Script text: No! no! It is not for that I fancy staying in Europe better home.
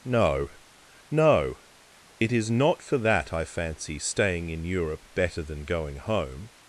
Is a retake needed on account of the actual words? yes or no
yes